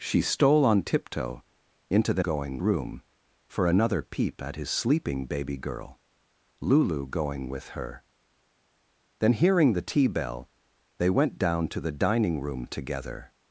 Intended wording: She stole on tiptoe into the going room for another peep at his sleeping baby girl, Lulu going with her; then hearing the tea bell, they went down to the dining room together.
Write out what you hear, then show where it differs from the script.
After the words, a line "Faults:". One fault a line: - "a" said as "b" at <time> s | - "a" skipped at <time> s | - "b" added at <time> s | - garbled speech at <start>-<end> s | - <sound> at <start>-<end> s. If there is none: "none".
She stole on tiptoe into the going room for another peep at his sleeping baby girl, Lulu going with her; then hearing the tea bell, they went down to the dining room together.
Faults:
none